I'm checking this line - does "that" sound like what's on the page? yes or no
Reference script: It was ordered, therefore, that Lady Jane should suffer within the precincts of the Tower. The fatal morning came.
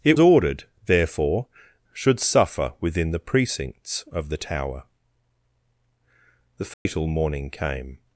no